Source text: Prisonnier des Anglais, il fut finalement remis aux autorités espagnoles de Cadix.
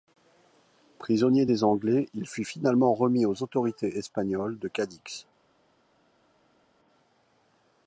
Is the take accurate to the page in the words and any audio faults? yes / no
yes